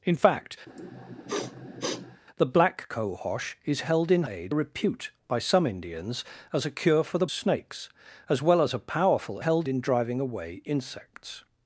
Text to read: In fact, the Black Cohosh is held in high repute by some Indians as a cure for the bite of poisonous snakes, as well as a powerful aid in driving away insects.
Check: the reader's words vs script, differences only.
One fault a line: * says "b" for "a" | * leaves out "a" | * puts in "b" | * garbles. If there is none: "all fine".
* says "aid" for "high"
* leaves out "bite of poisonous"
* says "held" for "aid"